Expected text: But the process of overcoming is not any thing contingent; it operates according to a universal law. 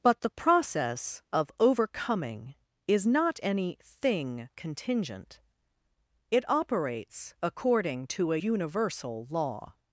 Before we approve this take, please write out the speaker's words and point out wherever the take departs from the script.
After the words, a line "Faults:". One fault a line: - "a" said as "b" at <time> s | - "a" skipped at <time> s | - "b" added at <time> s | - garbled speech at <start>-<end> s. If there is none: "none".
But the process of overcoming is not any thing contingent; it operates according to a universal law.
Faults:
none